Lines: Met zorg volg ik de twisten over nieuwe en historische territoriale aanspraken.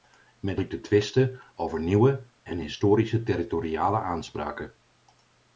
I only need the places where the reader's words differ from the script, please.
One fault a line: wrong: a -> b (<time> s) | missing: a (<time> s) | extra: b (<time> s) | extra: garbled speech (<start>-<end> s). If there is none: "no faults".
missing: zorg volg (0.6 s)